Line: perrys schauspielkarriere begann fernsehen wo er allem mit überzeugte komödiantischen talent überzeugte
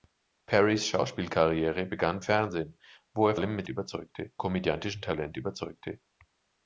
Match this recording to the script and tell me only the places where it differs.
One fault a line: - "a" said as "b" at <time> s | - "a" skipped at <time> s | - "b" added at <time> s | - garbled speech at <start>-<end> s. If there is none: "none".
none